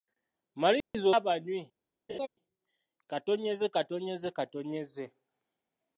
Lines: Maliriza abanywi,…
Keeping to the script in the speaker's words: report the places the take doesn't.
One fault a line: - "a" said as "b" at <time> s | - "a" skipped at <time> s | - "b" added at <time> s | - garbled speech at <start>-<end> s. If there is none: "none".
none